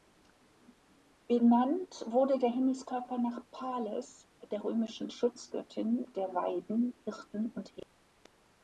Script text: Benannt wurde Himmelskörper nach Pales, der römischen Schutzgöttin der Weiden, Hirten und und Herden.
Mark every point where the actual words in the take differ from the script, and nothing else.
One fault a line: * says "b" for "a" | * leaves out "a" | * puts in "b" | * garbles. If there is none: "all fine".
* puts in "der"
* leaves out "und"